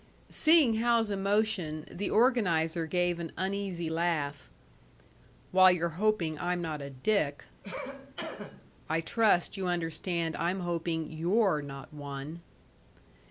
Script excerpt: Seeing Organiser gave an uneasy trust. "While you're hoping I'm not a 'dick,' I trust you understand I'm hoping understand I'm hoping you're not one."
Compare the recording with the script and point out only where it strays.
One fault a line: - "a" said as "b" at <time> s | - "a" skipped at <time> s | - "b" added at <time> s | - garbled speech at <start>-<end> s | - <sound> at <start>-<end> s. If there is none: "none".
- "Hal's emotion the" added at 0.8 s
- "trust" said as "laugh" at 3.9 s
- cough at 7.6-8.7 s
- "understand I'm hoping" skipped at 11.1 s